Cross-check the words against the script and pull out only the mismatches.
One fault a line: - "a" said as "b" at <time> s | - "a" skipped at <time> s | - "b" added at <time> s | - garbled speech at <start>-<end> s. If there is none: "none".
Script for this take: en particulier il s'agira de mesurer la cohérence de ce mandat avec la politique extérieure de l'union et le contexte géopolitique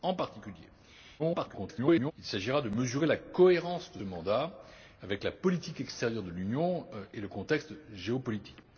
- garbled speech at 1.2-2.1 s
- "ce" skipped at 4.0 s